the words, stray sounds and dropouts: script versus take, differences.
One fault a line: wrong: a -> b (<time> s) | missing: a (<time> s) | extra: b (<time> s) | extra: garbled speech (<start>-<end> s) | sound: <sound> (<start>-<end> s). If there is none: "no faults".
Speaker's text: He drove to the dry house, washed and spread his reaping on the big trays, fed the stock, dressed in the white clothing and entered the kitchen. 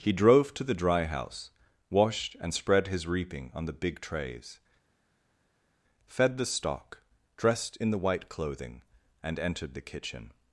no faults